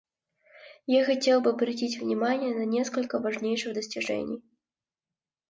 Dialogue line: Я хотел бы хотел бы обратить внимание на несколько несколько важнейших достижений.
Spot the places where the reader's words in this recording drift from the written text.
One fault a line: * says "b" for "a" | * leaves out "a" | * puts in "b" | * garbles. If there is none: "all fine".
* leaves out "хотел бы"
* leaves out "несколько"